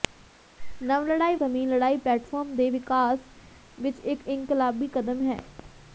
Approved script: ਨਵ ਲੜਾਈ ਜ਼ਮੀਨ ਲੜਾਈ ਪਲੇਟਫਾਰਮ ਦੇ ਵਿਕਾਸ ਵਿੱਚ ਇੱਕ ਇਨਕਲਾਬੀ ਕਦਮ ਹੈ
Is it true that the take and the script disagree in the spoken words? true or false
false